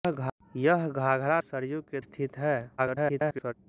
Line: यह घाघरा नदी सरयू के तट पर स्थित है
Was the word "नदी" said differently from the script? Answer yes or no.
yes